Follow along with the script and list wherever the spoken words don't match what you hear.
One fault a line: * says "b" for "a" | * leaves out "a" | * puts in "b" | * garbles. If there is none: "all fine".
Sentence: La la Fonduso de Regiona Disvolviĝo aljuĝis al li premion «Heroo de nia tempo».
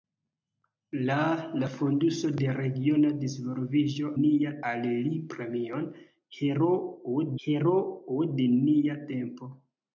* says "nia" for "aljuĝis"
* puts in "heroo"